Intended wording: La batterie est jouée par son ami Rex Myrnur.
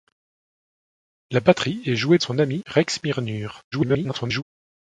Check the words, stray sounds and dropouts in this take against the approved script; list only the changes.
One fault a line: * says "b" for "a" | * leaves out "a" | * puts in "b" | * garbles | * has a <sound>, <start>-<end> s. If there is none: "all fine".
* leaves out "par"
* garbles